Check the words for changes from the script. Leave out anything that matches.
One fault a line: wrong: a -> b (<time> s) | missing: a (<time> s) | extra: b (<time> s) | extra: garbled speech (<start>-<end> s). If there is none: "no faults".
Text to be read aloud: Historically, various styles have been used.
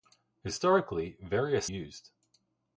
missing: styles have been (1.7 s)